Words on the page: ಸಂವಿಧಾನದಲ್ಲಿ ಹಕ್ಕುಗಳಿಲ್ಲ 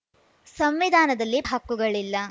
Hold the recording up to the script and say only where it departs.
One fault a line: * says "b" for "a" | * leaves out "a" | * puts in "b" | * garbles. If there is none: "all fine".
all fine